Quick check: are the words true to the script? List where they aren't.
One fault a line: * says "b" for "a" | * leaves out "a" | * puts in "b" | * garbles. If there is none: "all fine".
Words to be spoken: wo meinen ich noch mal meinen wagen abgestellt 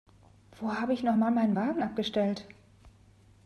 * says "habe" for "meinen"